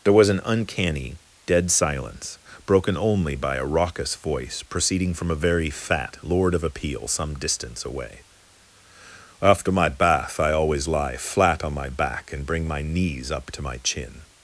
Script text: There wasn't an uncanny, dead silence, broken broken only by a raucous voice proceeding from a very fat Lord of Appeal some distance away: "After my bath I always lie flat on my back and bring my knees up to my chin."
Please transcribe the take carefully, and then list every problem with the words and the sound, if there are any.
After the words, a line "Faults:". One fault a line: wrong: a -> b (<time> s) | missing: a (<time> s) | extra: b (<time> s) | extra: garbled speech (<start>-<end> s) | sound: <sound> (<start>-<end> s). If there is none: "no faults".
There was an uncanny, dead silence, broken only by a raucous voice proceeding from a very fat Lord of Appeal some distance away: "After my bath I always lie flat on my back and bring my knees up to my chin."
Faults:
wrong: wasn't -> was (0.1 s)
missing: broken (3.0 s)